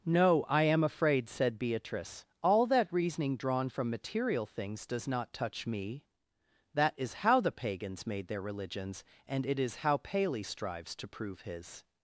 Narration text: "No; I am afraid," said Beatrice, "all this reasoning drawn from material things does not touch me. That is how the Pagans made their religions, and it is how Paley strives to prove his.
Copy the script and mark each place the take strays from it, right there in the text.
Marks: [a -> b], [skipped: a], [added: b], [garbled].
"No; I am afraid," said Beatrice, "all [this -> that] reasoning drawn from material things does not touch me. That is how the Pagans made their religions, and it is how Paley strives to prove his.